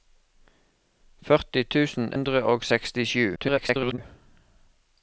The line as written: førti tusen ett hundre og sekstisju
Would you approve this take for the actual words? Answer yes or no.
no